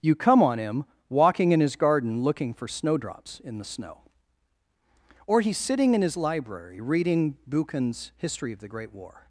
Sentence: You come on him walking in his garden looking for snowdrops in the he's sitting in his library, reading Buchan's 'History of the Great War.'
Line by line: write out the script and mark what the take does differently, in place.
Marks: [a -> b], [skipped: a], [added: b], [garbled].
You come on him walking in his garden looking for snowdrops in the [added: snow Or] he's sitting in his library, reading Buchan's 'History of the Great War.'